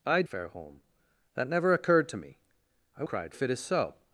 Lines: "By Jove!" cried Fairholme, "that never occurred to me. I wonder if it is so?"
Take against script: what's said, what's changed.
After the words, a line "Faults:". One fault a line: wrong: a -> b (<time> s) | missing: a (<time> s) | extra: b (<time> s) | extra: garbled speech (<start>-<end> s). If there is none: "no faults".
"By Fairholme, "that never occurred to me. I cried if it is so?"
Faults:
missing: Jove cried (0.2 s)
wrong: wonder -> cried (3.0 s)